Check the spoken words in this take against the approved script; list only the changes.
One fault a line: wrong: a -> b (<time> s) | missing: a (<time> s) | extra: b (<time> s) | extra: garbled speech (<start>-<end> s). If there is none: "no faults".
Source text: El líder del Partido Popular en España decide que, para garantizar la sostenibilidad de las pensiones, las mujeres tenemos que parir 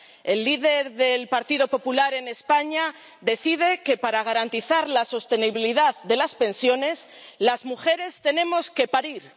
no faults